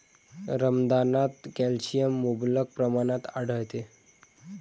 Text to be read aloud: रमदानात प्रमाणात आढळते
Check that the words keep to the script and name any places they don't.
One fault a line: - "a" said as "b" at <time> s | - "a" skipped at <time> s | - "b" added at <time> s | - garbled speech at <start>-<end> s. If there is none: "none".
- "कॅल्शियम मुबलक" added at 1.6 s